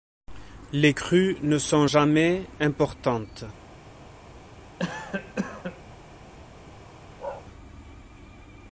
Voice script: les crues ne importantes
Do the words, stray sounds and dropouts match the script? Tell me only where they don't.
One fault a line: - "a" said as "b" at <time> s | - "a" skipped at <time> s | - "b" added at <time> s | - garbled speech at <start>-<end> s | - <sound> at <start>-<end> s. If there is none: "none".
- "sont jamais" added at 1.6 s
- cough at 4.8-5.8 s
- bark at 7.2-7.4 s